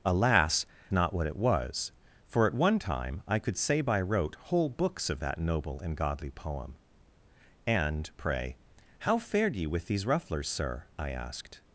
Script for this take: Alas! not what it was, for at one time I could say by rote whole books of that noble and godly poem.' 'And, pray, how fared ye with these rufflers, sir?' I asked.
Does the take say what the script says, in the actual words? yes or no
yes